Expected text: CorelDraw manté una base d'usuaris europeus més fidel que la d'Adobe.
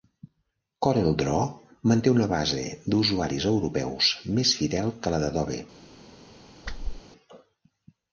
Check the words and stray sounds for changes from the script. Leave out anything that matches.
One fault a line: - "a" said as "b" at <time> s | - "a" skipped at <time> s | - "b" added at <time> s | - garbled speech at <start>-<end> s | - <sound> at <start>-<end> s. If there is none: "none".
- whoosh at 6.6-7.0 s